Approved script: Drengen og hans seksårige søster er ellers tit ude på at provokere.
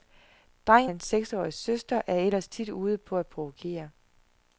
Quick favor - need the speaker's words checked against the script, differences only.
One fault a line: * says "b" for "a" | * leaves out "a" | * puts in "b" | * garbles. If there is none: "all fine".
* leaves out "og"